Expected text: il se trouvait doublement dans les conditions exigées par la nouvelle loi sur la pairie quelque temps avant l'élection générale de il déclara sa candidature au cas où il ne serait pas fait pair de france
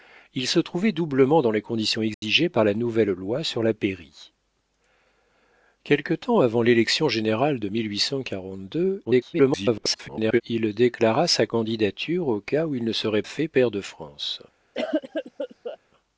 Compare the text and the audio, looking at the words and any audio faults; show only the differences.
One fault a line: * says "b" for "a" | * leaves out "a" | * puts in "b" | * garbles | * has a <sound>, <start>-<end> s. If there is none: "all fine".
* has a dropout, 2.1-2.2 s
* garbles
* leaves out "pas"
* has a cough, 14.8-15.8 s